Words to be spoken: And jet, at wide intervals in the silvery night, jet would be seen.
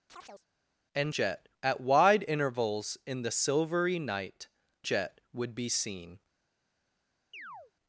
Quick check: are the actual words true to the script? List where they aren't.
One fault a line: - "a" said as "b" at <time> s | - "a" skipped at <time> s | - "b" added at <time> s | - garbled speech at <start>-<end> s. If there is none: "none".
none